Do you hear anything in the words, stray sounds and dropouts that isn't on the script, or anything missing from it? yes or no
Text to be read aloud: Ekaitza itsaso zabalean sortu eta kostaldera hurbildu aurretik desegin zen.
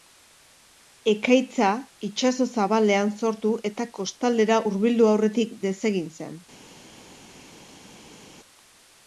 no